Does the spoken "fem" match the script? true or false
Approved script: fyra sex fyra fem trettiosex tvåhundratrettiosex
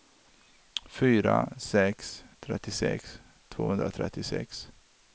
false